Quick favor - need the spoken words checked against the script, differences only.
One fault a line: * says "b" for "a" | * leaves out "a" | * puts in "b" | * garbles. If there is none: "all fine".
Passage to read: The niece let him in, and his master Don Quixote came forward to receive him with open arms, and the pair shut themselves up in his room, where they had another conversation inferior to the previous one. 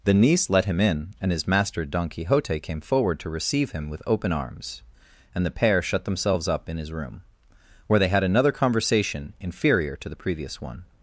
all fine